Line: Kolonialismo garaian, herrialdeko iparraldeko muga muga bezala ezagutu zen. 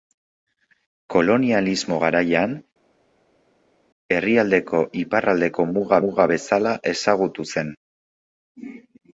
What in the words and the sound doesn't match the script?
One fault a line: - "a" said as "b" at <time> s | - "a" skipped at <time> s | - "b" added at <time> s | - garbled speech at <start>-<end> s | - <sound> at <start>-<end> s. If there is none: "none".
none